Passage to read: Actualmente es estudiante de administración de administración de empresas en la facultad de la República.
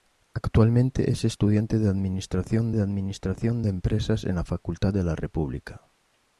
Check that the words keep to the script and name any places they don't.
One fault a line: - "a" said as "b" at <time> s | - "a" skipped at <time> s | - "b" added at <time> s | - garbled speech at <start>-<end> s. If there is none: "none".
none